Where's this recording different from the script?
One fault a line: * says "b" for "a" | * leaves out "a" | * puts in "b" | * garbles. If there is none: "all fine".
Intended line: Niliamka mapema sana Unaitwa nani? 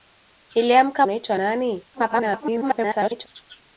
* leaves out "mapema sana"
* garbles